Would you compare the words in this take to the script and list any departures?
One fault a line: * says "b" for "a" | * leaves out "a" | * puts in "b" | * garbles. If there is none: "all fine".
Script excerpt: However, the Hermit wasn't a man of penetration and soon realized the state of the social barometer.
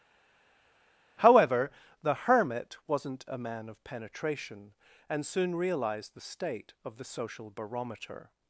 all fine